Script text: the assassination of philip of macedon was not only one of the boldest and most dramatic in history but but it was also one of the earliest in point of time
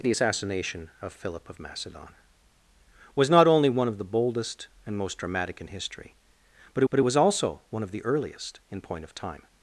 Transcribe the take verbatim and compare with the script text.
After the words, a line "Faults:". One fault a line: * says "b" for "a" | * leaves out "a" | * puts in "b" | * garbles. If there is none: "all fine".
the assassination of philip of macedon was not only one of the boldest and most dramatic in history but but it was also one of the earliest in point of time
Faults:
all fine